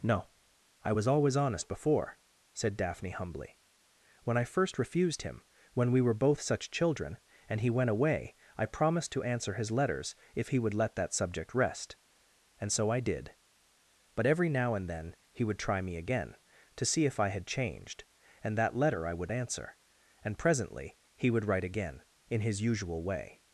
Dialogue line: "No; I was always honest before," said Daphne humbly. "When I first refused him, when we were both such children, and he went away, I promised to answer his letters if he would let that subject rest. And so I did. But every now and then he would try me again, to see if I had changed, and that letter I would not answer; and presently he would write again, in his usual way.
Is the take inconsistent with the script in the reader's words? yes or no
yes